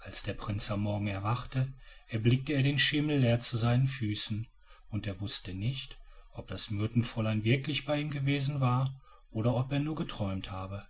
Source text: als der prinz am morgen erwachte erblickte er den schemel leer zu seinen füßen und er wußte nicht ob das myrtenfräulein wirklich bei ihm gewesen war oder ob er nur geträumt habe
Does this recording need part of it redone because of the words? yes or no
no